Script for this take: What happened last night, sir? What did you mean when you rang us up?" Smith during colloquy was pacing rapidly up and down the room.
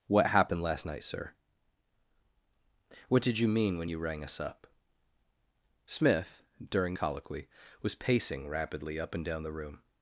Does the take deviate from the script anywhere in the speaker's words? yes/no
no